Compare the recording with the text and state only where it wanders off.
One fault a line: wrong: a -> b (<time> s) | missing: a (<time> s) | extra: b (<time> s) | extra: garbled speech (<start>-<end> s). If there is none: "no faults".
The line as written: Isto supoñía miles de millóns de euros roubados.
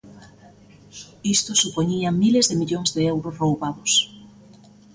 no faults